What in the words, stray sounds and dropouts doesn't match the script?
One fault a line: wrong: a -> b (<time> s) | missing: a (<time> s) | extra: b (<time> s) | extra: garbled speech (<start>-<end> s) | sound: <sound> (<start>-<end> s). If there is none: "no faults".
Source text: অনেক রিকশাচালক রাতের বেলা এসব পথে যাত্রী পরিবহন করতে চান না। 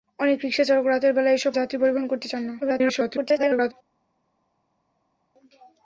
missing: পথে (1.5 s)
extra: garbled speech (2.6-3.7 s)